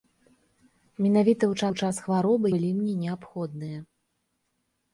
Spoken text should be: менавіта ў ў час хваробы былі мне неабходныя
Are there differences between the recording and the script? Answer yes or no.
no